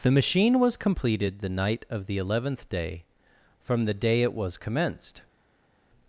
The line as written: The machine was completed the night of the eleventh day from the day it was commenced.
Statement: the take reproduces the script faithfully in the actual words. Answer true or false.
true